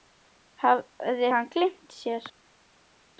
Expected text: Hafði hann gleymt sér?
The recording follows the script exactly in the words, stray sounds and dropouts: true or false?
true